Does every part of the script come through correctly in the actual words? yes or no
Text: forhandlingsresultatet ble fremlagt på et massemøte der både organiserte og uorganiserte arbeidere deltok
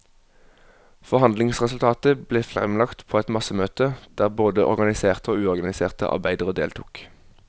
yes